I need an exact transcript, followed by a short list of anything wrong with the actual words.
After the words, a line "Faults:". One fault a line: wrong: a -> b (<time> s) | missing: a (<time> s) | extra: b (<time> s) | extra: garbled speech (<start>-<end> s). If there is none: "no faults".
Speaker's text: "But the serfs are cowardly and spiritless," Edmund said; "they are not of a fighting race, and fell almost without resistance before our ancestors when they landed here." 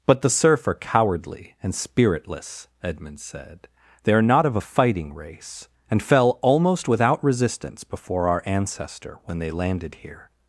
"But the serf are cowardly and spiritless," Edmund said; "they are not of a fighting race, and fell almost without resistance before our ancestor when they landed here."
Faults:
wrong: serfs -> serf (0.3 s)
wrong: ancestors -> ancestor (8.5 s)